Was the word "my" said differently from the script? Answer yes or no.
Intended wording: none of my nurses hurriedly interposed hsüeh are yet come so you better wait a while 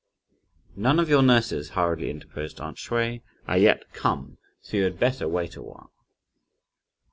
yes